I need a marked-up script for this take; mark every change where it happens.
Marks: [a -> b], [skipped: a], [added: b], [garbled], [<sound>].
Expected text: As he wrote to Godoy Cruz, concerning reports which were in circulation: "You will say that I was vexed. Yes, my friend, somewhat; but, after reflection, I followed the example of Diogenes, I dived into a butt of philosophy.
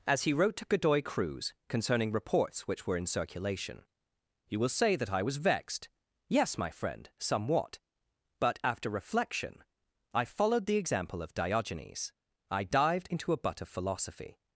As he wrote to Godoy Cruz, concerning reports which were in circulation: "You will say that I was vexed. Yes, my friend, somewhat; but, after reflection, I followed the example of Diogenes, I dived into a butt of philosophy.